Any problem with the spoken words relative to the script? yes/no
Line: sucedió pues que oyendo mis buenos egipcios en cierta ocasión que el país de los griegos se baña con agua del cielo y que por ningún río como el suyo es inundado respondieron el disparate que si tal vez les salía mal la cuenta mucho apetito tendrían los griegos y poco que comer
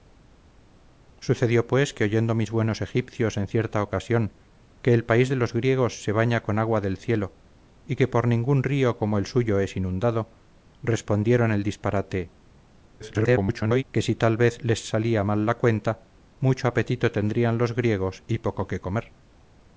yes